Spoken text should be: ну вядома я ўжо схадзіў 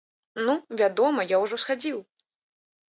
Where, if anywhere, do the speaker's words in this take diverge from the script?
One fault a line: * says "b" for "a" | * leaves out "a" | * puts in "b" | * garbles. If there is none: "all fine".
all fine